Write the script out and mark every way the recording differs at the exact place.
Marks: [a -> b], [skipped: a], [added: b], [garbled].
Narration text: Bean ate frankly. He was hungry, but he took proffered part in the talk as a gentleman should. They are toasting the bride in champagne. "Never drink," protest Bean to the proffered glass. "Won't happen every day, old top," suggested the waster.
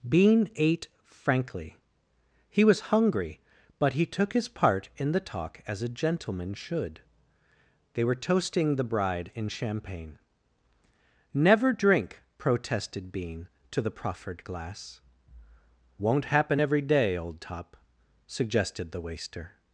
Bean ate frankly. He was hungry, but he took [proffered -> his] part in the talk as a gentleman should. They [are -> were] toasting the bride in champagne. "Never drink," [protest -> protested] Bean to the proffered glass. "Won't happen every day, old top," suggested the waster.